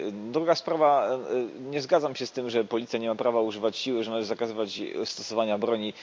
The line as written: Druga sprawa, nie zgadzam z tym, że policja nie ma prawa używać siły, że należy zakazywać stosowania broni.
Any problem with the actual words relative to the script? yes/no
yes